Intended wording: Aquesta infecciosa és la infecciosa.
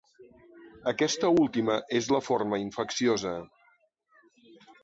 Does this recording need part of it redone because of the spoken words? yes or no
yes